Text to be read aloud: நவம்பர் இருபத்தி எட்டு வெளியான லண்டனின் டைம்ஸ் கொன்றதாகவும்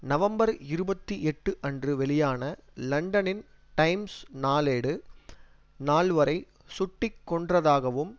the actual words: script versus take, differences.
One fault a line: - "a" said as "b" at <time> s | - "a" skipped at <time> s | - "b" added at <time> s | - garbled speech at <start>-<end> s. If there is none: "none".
- "அன்று" added at 1.6 s
- "நாளேடு நால்வரை சுட்டு" added at 4.4 s